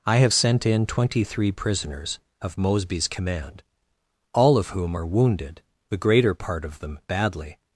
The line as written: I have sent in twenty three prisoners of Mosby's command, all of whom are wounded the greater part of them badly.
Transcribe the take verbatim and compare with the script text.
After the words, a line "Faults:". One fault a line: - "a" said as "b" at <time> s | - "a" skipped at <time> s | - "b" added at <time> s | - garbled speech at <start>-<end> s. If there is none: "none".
I have sent in twenty three prisoners of Mosby's command, all of whom are wounded the greater part of them badly.
Faults:
none